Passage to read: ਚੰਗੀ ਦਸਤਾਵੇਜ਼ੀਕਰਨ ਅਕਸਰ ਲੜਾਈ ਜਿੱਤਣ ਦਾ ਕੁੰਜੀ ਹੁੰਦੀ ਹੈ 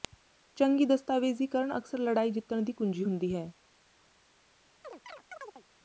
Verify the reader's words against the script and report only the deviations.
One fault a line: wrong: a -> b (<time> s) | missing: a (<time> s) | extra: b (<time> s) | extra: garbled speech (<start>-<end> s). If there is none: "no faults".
wrong: ਦਾ -> ਦੀ (2.6 s)